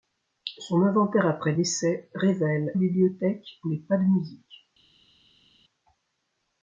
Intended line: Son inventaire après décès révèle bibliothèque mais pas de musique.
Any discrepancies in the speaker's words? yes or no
no